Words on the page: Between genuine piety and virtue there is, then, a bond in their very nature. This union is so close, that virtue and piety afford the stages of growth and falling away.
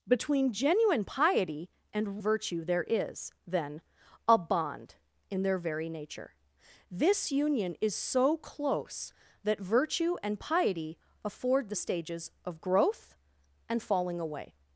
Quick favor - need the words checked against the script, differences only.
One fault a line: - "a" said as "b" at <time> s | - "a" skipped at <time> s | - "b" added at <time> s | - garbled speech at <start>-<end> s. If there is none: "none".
none